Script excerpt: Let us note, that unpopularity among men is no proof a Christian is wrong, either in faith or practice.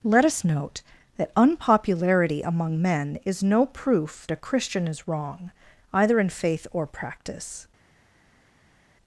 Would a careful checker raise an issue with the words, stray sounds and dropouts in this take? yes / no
no